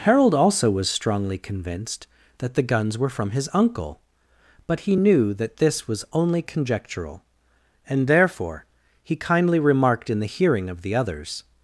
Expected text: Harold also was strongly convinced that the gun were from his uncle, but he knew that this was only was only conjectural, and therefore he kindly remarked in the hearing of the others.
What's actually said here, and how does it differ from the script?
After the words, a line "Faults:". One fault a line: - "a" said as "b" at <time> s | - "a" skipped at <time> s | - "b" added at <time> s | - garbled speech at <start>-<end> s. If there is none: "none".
Harold also was strongly convinced that the guns were from his uncle, but he knew that this was only conjectural, and therefore he kindly remarked in the hearing of the others.
Faults:
- "gun" said as "guns" at 2.6 s
- "was only" skipped at 6.4 s